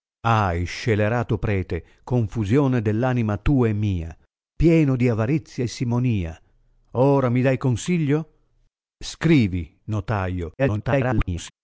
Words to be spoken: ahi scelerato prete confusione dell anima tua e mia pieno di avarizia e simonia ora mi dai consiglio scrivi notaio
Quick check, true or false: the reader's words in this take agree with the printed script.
false